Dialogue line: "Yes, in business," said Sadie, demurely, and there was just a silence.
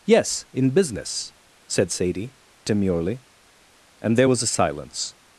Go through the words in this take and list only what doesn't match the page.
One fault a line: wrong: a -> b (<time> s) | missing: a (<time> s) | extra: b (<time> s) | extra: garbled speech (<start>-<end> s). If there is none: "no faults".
missing: just (4.4 s)